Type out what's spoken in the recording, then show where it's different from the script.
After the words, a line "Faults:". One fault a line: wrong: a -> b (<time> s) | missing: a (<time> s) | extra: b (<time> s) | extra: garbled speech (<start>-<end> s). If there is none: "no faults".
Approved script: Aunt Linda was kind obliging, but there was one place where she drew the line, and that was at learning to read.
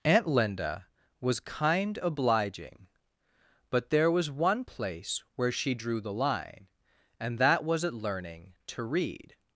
Aunt Linda was kind obliging, but there was one place where she drew the line, and that was at learning to read.
Faults:
no faults